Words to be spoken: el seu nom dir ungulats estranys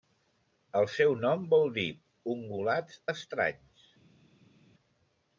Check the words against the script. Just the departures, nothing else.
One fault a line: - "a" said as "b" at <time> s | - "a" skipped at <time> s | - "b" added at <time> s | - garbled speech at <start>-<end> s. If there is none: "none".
- "vol" added at 1.5 s